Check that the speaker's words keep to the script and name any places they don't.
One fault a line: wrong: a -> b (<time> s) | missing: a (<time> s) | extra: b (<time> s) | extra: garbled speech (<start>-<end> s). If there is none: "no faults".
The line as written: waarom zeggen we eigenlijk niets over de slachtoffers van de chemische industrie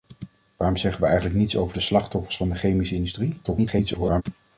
extra: garbled speech (3.4-4.2 s)